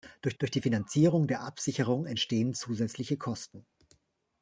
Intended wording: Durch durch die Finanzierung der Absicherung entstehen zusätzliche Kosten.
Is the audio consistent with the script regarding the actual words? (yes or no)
yes